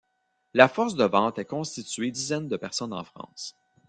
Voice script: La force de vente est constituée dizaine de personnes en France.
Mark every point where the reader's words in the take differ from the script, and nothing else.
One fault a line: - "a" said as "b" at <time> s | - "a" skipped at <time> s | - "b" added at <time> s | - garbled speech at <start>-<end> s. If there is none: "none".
none